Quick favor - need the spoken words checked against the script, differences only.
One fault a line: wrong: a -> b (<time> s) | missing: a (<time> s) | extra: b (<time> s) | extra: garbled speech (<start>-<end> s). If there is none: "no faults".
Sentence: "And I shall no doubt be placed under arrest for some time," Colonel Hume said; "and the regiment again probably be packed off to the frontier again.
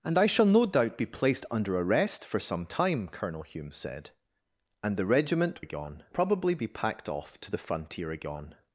no faults